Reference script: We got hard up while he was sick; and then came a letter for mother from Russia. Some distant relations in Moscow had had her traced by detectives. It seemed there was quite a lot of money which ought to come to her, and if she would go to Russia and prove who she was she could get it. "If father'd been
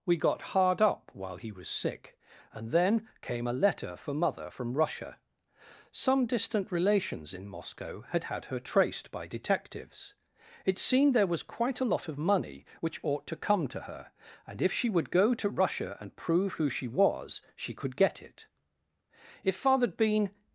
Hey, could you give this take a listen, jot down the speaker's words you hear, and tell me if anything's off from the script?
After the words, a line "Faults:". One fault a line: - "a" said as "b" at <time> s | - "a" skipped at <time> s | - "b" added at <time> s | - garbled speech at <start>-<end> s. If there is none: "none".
We got hard up while he was sick; and then came a letter for mother from Russia. Some distant relations in Moscow had had her traced by detectives. It seemed there was quite a lot of money which ought to come to her, and if she would go to Russia and prove who she was she could get it. "If father'd been
Faults:
none